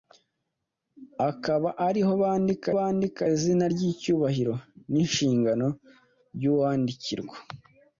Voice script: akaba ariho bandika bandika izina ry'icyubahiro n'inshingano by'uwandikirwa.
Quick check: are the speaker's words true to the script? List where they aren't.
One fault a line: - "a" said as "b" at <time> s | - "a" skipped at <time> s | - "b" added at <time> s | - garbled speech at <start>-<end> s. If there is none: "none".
none